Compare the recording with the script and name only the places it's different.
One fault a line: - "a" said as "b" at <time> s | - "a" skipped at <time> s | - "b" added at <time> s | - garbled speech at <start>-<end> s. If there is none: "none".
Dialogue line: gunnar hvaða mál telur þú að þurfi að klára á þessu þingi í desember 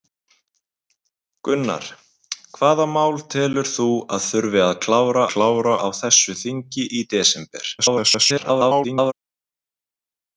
- "klára" added at 5.3 s
- garbled speech at 7.8-9.1 s